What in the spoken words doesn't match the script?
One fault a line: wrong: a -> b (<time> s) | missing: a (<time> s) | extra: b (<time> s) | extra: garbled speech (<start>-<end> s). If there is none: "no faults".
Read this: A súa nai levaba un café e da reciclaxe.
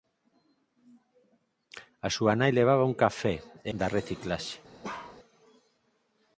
no faults